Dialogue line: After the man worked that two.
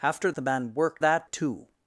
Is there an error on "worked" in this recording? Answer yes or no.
no